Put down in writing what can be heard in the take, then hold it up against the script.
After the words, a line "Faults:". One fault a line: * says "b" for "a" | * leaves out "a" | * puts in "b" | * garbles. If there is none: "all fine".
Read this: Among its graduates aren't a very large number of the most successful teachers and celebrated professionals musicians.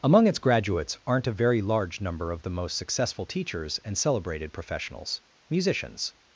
Among its graduates aren't a very large number of the most successful teachers and celebrated professionals musicians.
Faults:
all fine